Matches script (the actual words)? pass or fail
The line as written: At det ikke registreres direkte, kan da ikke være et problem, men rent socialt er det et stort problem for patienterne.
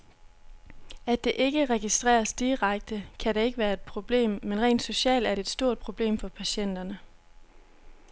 pass